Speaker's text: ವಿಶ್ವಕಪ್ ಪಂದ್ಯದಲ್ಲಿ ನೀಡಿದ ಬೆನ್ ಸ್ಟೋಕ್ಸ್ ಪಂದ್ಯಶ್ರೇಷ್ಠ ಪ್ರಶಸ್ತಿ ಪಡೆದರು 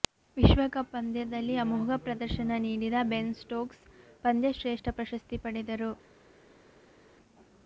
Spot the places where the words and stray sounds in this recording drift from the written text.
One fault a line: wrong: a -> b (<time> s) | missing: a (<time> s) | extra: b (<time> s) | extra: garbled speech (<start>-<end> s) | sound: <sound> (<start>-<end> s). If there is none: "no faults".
extra: ಅಮೋಘ ಪ್ರದರ್ಶನ (1.6 s)